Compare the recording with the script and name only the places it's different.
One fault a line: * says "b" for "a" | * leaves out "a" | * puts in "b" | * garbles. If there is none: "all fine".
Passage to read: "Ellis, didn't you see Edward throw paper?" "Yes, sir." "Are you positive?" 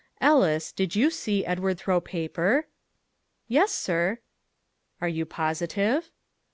* says "did" for "didn't"